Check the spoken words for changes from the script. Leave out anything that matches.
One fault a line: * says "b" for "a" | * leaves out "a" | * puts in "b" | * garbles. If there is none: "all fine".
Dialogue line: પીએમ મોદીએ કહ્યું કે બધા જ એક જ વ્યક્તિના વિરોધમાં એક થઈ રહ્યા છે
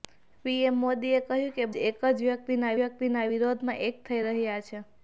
* leaves out "બધા"
* puts in "વ્યક્તિના"